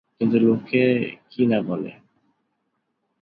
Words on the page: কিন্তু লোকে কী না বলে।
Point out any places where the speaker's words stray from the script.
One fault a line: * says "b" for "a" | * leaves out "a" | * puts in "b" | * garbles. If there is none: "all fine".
all fine